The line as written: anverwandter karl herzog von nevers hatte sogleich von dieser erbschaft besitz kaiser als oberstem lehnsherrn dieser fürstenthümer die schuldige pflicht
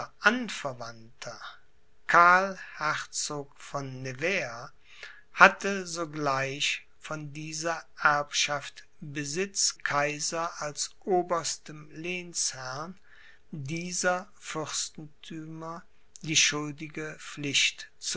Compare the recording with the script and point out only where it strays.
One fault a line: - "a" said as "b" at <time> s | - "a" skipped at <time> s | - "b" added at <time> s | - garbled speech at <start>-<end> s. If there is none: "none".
none